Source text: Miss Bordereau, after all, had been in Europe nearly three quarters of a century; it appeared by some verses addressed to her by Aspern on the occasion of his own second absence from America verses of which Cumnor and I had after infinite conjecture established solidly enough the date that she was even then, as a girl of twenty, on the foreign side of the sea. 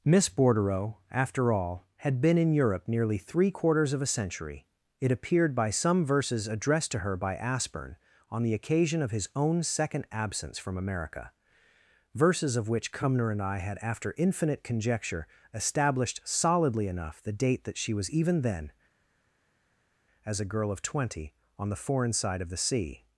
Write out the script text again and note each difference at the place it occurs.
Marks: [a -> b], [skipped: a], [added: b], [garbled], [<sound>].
Miss Bordereau, after all, had been in Europe nearly three quarters of a century; it appeared by some verses addressed to her by Aspern on the occasion of his own second absence from America verses of which Cumnor and I had after infinite conjecture established solidly enough the date that she was even then, as a girl of twenty, on the foreign side of the sea.